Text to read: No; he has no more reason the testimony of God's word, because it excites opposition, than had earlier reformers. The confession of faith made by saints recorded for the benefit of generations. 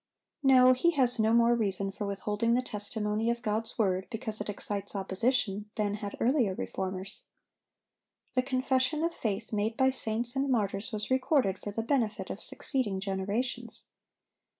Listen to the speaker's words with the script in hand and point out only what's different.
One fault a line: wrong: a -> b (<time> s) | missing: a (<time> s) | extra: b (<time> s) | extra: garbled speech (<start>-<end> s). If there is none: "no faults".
extra: for withholding (1.9 s)
extra: and martyrs was (10.3 s)
extra: succeeding (12.4 s)